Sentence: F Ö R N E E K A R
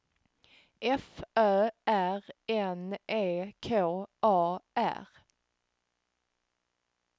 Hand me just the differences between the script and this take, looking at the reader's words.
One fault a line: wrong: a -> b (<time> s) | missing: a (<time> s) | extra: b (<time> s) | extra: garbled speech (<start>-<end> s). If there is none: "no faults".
missing: E (3.5 s)